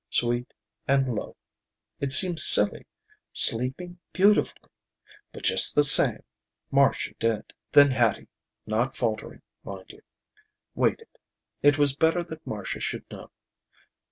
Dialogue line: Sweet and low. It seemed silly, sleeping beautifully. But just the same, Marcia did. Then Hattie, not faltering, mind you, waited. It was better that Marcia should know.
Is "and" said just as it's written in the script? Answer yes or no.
yes